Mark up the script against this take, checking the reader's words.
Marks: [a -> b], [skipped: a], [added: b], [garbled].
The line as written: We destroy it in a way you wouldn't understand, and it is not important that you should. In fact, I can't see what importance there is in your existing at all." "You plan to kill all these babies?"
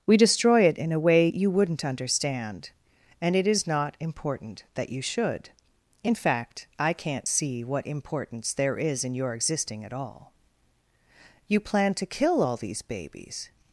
We destroy it in a way you wouldn't understand, and it is not important that you should. In fact, I can't see what importance there is in your existing at all." "You plan to kill all these babies?"